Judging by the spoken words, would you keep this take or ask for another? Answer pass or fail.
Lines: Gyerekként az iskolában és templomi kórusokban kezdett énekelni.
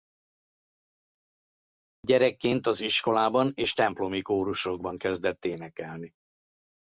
pass